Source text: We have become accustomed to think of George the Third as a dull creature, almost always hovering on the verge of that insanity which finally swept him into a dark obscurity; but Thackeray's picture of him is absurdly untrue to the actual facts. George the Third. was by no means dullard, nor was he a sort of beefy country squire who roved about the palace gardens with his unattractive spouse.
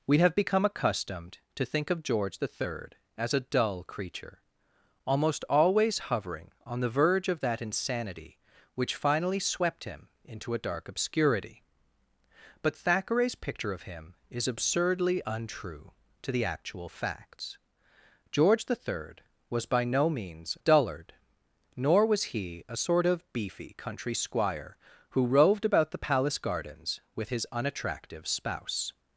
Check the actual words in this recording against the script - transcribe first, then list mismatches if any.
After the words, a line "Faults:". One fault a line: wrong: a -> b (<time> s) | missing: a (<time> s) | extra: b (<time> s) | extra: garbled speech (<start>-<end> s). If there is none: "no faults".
We have become accustomed to think of George the Third as a dull creature, almost always hovering on the verge of that insanity which finally swept him into a dark obscurity; but Thackeray's picture of him is absurdly untrue to the actual facts. George the Third. was by no means dullard, nor was he a sort of beefy country squire who roved about the palace gardens with his unattractive spouse.
Faults:
no faults